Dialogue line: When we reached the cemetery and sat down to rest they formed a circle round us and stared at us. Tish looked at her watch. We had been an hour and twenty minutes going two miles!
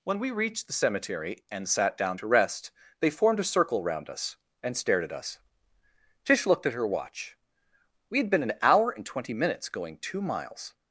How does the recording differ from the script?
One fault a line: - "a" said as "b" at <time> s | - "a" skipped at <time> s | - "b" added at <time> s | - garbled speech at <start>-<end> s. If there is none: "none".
none